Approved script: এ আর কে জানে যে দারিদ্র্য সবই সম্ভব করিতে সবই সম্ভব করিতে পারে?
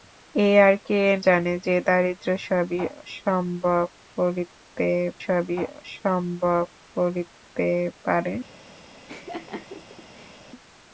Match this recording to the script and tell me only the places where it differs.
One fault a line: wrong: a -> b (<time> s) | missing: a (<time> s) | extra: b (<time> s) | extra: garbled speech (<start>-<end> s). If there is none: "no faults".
no faults